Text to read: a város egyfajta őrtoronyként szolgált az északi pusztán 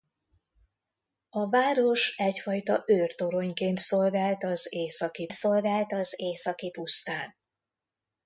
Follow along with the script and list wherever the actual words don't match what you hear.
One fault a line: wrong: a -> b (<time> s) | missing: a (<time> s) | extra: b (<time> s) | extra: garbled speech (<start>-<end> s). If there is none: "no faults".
extra: szolgált az északi (5.3 s)